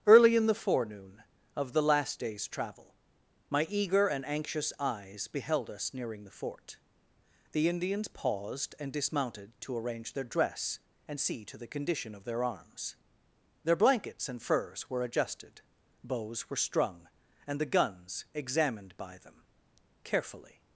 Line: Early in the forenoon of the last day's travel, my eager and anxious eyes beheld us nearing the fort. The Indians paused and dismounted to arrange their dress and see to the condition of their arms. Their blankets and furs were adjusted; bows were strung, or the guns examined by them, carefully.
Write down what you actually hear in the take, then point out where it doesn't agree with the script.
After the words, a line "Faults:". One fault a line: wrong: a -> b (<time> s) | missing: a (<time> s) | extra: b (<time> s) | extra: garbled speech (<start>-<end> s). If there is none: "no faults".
Early in the forenoon of the last day's travel, my eager and anxious eyes beheld us nearing the fort. The Indians paused and dismounted to arrange their dress and see to the condition of their arms. Their blankets and furs were adjusted; bows were strung, and the guns examined by them, carefully.
Faults:
wrong: or -> and (17.4 s)